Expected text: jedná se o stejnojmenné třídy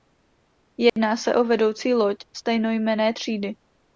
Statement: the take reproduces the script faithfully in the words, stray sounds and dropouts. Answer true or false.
false